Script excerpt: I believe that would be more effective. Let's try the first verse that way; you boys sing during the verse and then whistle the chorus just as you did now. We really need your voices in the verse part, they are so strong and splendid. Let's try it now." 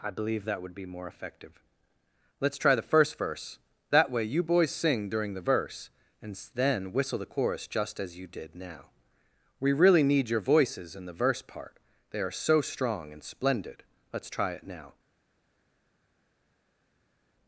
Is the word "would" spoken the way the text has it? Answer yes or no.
yes